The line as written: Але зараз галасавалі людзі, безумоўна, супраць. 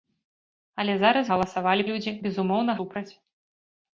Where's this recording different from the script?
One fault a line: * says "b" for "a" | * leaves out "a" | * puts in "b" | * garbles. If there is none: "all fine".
all fine